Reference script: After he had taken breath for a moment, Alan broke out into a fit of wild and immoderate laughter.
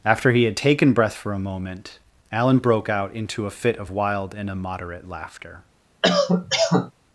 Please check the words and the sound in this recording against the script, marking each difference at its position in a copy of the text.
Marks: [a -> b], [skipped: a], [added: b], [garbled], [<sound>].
After he had taken breath for a moment, Alan broke out into a fit of wild and immoderate laughter. [cough]